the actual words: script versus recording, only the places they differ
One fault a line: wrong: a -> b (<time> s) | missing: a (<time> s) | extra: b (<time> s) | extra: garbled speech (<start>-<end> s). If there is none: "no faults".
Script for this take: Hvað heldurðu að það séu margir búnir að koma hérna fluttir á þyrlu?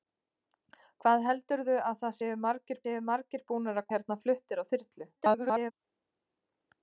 extra: séu margir (2.8 s)
missing: koma (3.9 s)
extra: garbled speech (5.2-5.7 s)